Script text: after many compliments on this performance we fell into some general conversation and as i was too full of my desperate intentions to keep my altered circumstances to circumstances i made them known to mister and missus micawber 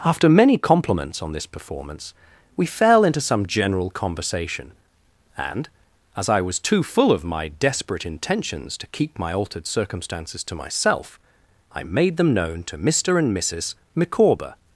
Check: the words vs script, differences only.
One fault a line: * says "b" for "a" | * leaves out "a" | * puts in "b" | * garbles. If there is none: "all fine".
* says "myself" for "circumstances"